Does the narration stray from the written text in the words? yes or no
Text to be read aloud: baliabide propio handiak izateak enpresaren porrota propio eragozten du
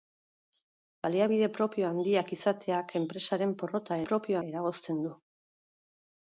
no